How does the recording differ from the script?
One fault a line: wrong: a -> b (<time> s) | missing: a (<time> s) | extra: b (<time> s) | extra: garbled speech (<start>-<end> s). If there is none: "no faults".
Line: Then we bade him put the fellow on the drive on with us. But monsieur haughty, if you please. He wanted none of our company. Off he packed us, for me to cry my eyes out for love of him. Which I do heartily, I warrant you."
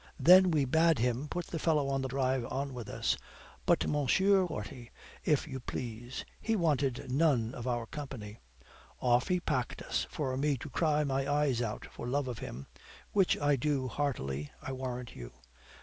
no faults